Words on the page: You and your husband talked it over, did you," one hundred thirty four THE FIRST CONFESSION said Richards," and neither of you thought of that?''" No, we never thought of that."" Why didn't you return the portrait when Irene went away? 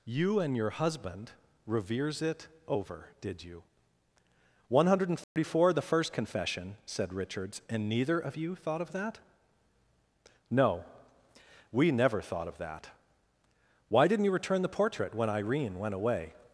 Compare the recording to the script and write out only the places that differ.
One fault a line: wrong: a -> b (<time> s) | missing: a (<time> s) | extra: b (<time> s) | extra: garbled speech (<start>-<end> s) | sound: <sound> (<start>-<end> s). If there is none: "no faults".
wrong: talked -> reveres (1.7 s)
sound: dropout (5.2-5.4 s)